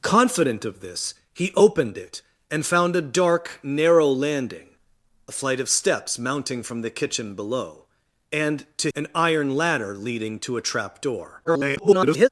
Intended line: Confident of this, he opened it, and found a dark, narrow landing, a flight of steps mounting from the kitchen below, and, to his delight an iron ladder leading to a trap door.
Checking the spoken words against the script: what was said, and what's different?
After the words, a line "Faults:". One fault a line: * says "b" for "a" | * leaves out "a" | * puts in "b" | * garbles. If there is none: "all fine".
Confident of this, he opened it, and found a dark, narrow landing, a flight of steps mounting from the kitchen below, and, to an iron ladder leading to a trap door. [garbled]
Faults:
* leaves out "his delight"
* garbles